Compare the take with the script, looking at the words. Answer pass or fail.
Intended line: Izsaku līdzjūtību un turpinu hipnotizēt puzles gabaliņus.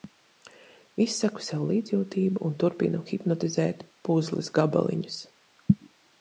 fail